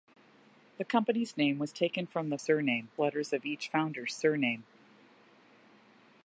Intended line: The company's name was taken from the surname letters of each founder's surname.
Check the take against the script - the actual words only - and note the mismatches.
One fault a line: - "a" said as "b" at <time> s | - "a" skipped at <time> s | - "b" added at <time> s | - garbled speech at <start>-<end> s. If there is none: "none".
none